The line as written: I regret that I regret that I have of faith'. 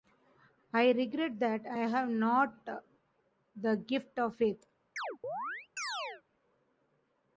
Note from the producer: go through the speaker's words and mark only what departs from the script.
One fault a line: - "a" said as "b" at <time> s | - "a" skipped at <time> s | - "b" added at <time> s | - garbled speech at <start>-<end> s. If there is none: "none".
- "regret that I have" said as "have not the gift" at 1.8 s